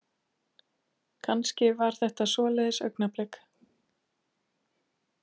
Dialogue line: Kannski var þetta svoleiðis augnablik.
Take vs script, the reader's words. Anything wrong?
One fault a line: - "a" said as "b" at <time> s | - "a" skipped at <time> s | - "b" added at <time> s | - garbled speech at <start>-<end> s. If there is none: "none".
none